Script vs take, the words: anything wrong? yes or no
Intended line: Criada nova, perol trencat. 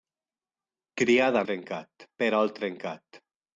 yes